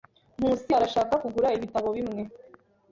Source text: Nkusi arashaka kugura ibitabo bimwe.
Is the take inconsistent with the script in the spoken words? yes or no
no